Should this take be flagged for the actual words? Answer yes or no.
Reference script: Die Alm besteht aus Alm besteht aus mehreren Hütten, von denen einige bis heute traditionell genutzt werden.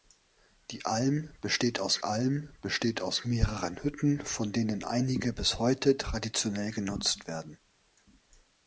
no